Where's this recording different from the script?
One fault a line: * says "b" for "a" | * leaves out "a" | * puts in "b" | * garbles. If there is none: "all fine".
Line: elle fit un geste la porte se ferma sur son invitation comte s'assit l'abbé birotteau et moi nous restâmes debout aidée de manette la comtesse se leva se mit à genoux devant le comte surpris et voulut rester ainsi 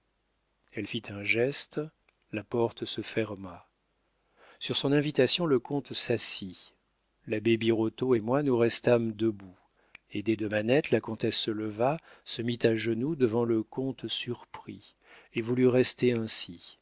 * puts in "le"